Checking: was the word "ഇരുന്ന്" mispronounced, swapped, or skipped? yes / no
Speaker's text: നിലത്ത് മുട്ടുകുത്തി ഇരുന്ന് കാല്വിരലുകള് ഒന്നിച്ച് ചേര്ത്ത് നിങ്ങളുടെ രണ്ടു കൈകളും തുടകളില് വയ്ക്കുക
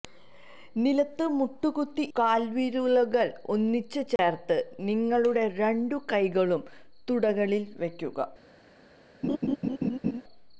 yes